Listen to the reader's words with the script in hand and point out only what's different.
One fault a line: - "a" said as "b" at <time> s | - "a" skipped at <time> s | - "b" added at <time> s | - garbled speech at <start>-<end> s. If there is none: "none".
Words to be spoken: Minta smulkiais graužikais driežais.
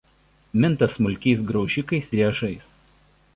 none